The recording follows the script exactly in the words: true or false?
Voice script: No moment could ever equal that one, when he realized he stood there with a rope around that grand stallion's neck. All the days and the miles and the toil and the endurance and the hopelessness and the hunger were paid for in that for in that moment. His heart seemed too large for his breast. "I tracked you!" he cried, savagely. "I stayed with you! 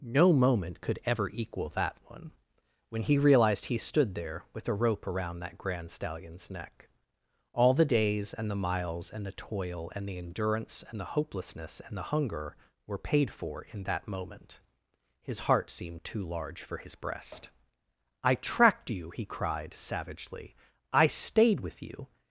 false